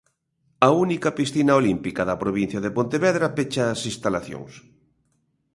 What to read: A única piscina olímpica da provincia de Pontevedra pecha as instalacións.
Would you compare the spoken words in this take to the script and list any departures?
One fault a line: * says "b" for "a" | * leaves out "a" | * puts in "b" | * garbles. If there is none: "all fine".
all fine